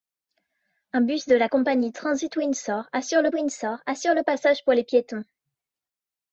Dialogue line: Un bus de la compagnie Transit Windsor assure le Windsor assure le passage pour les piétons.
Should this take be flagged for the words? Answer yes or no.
no